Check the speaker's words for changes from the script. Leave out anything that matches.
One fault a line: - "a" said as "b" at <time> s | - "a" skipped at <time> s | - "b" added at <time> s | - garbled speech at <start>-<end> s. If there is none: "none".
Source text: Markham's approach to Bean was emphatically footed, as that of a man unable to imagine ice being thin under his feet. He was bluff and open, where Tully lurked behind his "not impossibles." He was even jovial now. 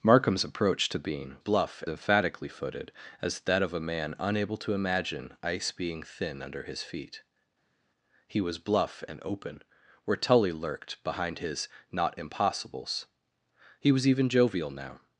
- "was" said as "bluff" at 1.4 s